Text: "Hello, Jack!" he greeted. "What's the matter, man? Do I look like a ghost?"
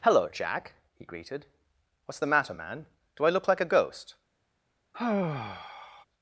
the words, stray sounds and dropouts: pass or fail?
fail